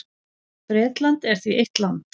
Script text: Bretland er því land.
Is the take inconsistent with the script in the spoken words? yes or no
yes